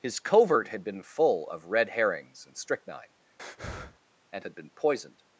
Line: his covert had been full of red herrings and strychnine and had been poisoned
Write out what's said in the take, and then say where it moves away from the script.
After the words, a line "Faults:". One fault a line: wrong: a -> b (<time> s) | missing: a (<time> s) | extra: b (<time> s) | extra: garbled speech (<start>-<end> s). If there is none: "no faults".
his covert had been full of red herrings and strychnine and had been poisoned
Faults:
no faults